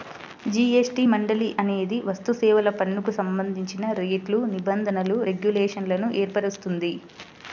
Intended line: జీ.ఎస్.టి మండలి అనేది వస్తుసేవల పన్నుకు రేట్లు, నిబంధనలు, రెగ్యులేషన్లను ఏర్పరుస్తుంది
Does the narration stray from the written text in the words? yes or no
yes